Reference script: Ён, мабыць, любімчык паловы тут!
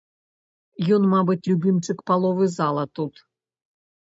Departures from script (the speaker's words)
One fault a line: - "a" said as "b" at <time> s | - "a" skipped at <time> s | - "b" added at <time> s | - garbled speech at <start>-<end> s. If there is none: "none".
- "зала" added at 2.6 s